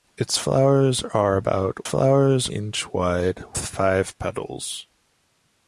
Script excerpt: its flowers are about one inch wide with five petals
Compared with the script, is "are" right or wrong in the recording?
right